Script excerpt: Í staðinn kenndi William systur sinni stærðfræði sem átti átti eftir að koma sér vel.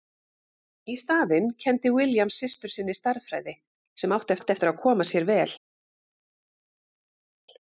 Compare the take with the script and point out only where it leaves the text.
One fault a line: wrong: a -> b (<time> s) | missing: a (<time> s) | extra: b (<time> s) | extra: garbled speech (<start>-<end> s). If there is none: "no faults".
no faults